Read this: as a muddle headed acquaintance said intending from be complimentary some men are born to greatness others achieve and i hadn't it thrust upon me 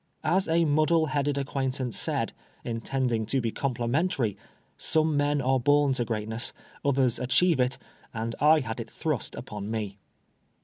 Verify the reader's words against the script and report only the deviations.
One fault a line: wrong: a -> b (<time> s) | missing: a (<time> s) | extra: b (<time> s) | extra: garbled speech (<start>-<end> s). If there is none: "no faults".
wrong: from -> to (3.3 s)
extra: it (7.6 s)
wrong: hadn't -> had (8.6 s)